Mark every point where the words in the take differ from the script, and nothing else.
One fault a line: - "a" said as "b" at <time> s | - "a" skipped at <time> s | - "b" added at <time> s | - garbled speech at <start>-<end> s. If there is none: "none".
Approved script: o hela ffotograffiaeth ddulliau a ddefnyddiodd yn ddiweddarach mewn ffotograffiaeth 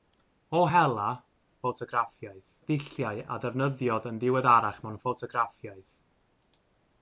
none